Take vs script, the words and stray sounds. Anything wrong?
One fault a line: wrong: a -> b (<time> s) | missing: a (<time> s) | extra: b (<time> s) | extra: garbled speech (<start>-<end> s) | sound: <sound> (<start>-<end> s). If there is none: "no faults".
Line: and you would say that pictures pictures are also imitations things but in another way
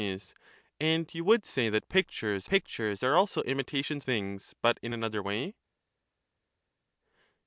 no faults